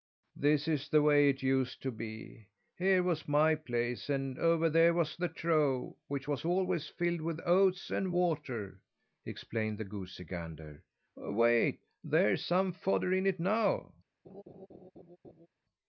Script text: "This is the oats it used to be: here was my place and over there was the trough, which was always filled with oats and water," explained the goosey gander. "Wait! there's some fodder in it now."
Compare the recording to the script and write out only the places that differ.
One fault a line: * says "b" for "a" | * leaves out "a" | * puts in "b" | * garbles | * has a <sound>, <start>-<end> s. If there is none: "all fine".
* says "way" for "oats"
* has a laugh, 14.2-15.5 s